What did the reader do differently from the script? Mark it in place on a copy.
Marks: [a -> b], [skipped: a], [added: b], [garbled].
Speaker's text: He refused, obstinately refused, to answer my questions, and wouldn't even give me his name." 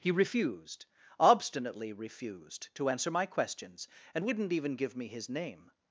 He refused, obstinately refused, to answer my questions, and wouldn't even give me his name."